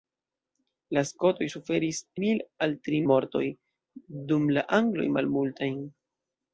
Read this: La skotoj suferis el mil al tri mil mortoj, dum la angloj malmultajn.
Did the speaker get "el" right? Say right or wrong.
wrong